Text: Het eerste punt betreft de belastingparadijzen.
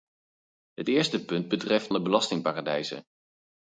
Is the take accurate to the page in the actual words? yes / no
yes